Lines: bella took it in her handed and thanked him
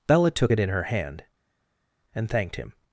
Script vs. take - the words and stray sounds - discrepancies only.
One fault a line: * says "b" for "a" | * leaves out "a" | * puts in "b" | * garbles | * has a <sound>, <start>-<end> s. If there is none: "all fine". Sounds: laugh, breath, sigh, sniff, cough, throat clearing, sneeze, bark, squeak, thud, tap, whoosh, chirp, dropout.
* says "hand" for "handed"